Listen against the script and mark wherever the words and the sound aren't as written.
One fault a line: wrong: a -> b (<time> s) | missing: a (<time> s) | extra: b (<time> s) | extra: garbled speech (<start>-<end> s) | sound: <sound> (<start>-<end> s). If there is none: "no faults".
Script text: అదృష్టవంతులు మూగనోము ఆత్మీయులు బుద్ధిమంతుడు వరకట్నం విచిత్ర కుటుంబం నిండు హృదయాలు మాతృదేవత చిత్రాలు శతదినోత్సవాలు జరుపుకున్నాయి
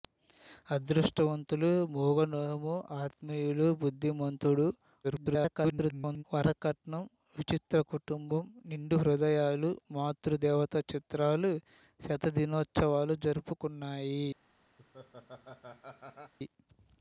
extra: garbled speech (5.0-6.2 s)
sound: laugh (14.8-16.3 s)